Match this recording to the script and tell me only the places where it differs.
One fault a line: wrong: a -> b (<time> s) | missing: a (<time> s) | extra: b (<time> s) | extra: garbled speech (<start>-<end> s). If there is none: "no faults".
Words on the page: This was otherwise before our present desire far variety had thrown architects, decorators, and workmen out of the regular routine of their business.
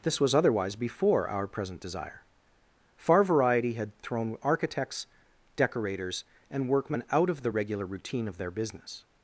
no faults